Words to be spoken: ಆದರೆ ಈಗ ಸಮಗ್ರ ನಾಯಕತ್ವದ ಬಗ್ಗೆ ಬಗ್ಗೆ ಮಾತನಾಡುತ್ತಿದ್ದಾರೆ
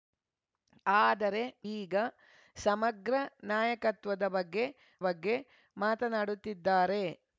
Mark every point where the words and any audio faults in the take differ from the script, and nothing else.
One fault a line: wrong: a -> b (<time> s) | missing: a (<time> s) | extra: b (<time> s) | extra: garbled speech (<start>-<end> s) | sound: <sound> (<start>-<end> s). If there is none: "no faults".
no faults